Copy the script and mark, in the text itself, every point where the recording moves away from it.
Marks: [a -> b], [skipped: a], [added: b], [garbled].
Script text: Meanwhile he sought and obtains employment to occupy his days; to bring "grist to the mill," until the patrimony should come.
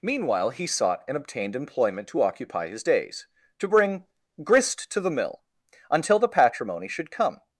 Meanwhile he sought and [obtains -> obtained] employment to occupy his days; to bring "grist to the mill," until the patrimony should come.